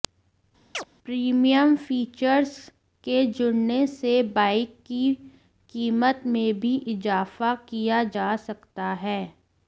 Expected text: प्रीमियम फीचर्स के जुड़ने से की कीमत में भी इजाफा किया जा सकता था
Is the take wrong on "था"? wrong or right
wrong